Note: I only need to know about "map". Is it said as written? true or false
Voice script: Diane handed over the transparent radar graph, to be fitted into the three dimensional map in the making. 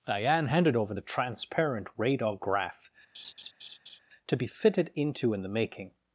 false